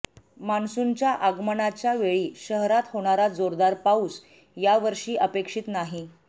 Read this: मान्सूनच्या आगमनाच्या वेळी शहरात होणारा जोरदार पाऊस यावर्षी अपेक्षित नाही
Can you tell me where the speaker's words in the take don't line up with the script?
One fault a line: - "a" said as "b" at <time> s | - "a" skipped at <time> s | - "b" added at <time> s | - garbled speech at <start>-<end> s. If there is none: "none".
none